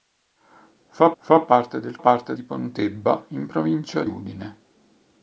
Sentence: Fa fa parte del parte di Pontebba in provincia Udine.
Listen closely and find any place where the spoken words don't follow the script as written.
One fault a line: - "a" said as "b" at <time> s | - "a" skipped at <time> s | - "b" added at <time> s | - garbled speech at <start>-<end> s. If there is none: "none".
none